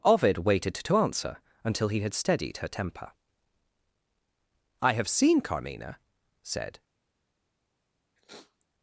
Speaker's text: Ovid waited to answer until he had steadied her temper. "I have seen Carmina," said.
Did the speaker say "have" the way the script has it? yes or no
yes